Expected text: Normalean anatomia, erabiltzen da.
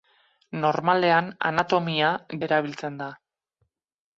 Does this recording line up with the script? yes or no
yes